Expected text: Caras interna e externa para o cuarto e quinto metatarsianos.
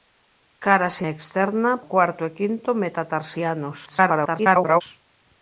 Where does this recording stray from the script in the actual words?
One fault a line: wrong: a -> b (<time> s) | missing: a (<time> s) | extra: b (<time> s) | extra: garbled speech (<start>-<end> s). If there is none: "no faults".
missing: interna (0.9 s)
missing: para (1.7 s)
extra: garbled speech (3.8-4.8 s)